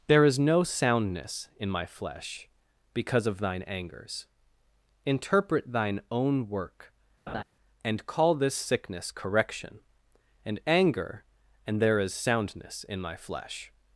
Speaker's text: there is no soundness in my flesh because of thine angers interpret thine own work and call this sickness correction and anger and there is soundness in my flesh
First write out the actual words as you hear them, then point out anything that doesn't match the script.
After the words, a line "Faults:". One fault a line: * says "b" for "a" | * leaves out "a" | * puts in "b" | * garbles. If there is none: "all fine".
there is no soundness in my flesh because of thine angers interpret thine own work and call this sickness correction and anger and there is soundness in my flesh
Faults:
all fine